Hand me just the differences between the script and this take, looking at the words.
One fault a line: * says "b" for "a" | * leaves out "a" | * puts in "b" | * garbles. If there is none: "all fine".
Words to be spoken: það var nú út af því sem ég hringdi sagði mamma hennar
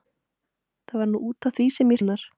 * leaves out "hringdi sagði mamma"